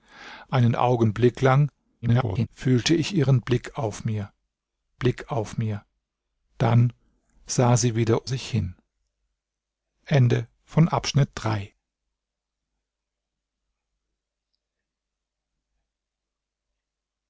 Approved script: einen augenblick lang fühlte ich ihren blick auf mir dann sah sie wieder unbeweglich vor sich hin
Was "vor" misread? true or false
true